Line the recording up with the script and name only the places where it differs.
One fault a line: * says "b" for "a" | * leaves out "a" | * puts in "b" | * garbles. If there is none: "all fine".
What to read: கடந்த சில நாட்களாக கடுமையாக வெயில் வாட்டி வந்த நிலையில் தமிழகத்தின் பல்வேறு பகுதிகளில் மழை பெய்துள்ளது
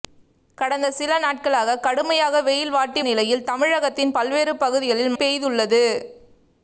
* leaves out "வந்த"
* leaves out "மழை"